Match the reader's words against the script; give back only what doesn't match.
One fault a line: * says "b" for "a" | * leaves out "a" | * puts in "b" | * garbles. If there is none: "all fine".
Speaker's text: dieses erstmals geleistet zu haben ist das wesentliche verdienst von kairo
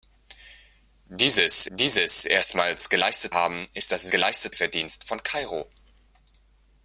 * puts in "dieses"
* leaves out "zu"
* says "geleistet" for "wesentliche"